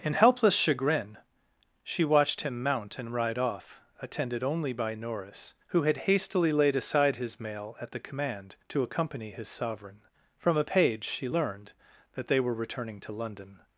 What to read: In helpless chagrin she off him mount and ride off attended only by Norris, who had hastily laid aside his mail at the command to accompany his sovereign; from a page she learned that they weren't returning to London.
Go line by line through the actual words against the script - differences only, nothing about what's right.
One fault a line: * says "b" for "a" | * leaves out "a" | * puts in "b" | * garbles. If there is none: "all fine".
* says "watched" for "off"
* says "were" for "weren't"